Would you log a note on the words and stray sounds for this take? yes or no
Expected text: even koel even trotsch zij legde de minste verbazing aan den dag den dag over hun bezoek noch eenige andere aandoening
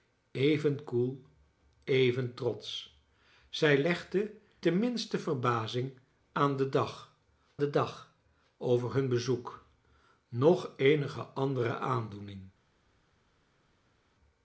no